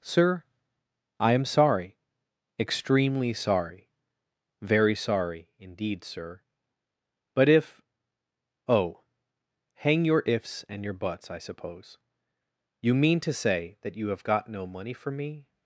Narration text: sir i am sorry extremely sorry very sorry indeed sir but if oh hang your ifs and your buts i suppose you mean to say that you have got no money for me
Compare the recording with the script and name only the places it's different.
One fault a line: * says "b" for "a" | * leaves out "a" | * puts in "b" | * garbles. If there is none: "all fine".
all fine